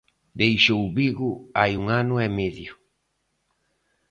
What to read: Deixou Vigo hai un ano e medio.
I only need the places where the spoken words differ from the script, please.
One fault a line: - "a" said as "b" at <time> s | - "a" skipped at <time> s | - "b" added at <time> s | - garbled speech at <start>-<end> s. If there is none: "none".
none